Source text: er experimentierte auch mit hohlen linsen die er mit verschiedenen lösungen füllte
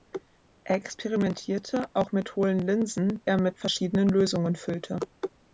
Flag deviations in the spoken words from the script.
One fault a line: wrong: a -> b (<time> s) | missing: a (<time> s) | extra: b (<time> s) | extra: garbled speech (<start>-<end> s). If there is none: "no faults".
missing: die (3.2 s)